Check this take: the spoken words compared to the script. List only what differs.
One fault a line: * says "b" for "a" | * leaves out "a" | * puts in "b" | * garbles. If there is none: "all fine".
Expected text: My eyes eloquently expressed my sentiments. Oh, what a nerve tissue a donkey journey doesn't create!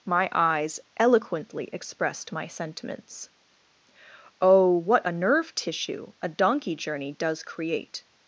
* says "does" for "doesn't"